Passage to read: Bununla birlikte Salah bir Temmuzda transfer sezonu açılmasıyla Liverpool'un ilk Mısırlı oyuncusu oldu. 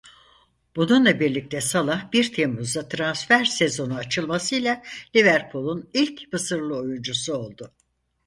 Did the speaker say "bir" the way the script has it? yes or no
yes